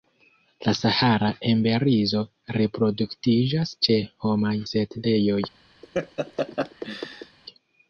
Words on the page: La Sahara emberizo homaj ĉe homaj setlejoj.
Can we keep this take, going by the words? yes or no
no